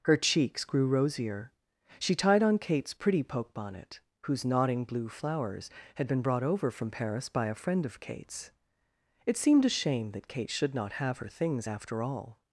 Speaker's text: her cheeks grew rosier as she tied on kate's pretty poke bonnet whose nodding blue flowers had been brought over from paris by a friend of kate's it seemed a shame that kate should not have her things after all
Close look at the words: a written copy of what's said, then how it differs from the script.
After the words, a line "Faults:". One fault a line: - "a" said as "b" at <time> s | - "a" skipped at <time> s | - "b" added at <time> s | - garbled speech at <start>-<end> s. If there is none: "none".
her cheeks grew rosier she tied on kate's pretty poke bonnet whose nodding blue flowers had been brought over from paris by a friend of kate's it seemed a shame that kate should not have her things after all
Faults:
- "as" skipped at 1.5 s